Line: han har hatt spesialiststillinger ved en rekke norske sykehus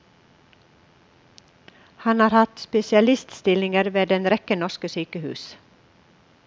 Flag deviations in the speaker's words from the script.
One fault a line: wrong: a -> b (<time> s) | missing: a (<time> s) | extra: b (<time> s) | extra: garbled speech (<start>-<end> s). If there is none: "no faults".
no faults